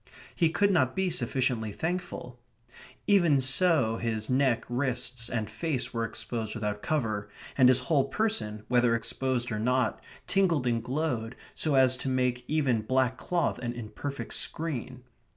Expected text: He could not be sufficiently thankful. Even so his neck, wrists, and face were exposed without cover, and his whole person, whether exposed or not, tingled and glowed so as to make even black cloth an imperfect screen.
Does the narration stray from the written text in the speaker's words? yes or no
no